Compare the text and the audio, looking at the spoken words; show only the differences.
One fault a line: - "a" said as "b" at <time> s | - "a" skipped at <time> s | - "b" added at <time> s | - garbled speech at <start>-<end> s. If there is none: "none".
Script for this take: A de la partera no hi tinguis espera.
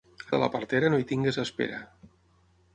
none